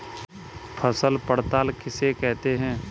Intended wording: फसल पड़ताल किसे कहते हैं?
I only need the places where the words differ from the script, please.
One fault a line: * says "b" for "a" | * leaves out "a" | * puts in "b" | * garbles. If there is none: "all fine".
all fine